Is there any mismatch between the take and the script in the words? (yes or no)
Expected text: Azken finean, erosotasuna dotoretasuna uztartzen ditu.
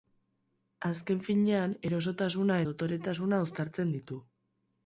no